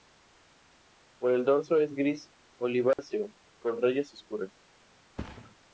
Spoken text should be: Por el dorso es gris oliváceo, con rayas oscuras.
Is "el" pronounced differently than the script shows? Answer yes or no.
no